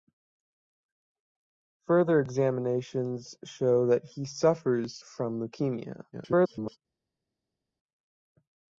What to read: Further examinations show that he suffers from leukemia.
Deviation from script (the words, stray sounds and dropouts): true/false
true